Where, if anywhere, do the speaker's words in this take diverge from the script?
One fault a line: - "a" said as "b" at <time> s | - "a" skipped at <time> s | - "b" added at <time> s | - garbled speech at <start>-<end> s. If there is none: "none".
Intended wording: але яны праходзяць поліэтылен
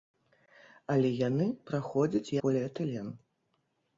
none